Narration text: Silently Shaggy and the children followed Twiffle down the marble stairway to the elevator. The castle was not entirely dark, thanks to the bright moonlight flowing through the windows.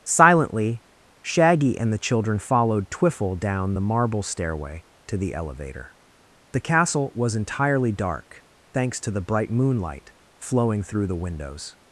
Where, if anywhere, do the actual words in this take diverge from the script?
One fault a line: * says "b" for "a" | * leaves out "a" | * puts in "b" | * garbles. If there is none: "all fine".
* leaves out "not"